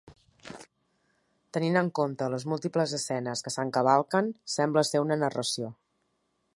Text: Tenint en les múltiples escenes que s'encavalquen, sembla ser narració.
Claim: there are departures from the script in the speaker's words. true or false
true